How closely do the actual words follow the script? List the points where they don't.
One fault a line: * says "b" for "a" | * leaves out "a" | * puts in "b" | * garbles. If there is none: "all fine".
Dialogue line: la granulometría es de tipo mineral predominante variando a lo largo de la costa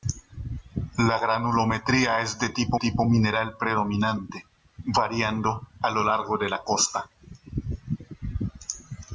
* puts in "tipo"